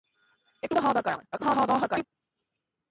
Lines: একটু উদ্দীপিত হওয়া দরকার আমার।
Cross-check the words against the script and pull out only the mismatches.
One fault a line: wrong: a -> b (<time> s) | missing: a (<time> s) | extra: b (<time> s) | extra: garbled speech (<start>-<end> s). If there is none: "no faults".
missing: উদ্দীপিত (0.7 s)
extra: garbled speech (1.3-2.0 s)